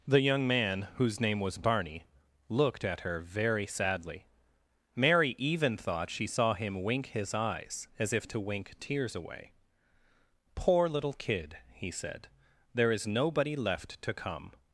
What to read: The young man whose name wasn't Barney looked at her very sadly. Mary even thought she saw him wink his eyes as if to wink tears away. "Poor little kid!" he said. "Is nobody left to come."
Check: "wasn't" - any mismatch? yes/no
yes